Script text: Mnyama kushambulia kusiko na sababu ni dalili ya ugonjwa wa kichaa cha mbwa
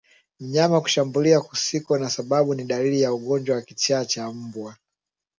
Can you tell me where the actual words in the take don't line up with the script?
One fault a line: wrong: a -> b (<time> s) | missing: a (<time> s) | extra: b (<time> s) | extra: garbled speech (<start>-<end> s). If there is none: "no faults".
no faults